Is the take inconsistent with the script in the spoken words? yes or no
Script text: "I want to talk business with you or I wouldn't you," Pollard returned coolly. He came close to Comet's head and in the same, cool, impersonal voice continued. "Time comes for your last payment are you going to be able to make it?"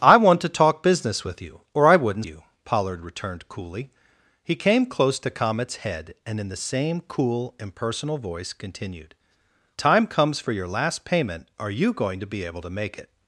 no